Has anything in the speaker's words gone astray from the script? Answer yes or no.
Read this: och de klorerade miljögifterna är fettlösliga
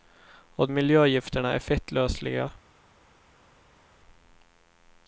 yes